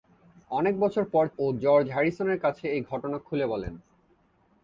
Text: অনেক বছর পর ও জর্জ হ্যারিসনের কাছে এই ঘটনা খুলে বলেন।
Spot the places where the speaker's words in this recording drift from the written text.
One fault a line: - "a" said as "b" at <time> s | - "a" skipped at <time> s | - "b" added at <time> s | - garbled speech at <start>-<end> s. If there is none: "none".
none